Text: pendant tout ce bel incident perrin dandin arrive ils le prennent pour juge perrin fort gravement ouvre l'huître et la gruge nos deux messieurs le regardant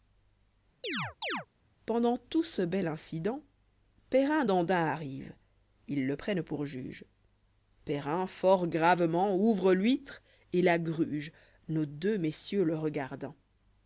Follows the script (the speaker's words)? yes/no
yes